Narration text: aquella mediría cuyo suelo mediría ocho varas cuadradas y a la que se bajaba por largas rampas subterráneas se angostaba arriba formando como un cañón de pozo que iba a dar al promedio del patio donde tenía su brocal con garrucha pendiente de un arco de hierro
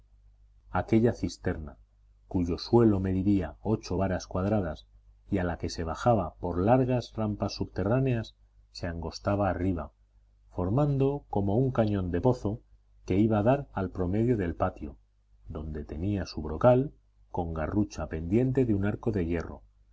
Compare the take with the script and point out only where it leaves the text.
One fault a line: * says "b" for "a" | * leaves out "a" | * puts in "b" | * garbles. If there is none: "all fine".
* says "cisterna" for "mediría"